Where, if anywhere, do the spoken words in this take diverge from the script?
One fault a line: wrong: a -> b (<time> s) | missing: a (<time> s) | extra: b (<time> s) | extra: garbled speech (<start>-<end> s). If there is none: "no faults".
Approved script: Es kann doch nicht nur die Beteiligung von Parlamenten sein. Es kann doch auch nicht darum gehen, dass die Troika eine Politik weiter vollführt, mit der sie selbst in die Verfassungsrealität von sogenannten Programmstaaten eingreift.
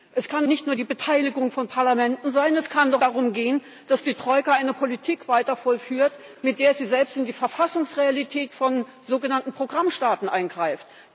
missing: doch (0.5 s)
missing: auch nicht (3.0 s)